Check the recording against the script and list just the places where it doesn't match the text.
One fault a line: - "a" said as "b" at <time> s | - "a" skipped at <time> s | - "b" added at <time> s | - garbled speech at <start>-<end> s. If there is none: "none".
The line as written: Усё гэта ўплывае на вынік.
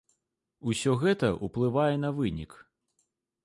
none